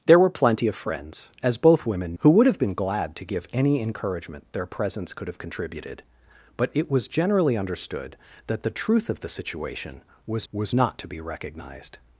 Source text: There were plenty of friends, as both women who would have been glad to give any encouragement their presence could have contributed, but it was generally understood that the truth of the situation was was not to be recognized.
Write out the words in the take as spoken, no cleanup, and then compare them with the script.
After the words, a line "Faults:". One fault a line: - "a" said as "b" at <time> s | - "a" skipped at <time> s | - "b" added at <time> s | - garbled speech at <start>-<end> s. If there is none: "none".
There were plenty of friends, as both women who would have been glad to give any encouragement their presence could have contributed, but it was generally understood that the truth of the situation was was not to be recognized.
Faults:
none